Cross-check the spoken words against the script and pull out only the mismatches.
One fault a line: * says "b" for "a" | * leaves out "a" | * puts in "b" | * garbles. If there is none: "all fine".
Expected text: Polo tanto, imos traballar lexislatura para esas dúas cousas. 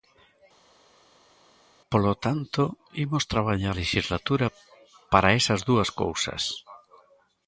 all fine